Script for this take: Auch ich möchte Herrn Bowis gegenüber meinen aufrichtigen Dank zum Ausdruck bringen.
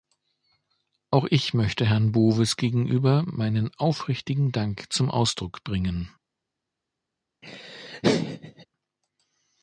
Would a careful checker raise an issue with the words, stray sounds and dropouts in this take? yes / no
yes